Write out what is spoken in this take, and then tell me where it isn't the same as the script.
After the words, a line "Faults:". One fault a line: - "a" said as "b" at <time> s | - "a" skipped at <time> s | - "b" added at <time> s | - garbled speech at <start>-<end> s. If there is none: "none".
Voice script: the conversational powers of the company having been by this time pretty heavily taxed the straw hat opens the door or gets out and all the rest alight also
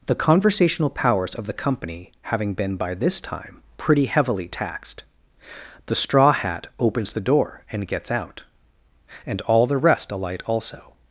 the conversational powers of the company having been by this time pretty heavily taxed the straw hat opens the door and gets out and all the rest alight also
Faults:
- "or" said as "and" at 7.7 s